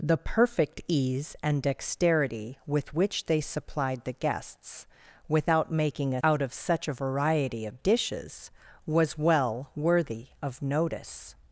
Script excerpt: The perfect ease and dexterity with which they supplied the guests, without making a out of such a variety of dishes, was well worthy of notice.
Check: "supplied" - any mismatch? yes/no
no